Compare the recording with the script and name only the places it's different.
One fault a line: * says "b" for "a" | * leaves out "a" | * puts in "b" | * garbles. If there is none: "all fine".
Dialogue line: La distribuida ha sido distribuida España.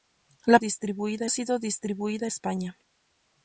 all fine